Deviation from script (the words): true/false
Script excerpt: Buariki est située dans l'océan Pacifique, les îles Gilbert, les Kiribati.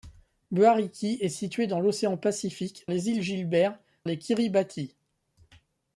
false